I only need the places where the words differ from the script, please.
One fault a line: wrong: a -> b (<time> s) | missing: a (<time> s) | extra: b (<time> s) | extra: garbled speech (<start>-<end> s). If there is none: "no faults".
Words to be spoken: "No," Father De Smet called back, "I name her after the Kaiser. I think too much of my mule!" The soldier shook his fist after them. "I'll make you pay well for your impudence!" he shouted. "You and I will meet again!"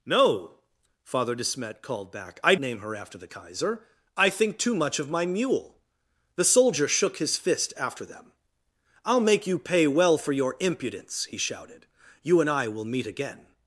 no faults